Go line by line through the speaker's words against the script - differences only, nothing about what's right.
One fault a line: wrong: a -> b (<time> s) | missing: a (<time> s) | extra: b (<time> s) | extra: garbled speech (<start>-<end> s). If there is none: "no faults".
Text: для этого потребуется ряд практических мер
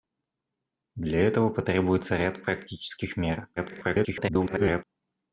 extra: garbled speech (3.6-4.8 s)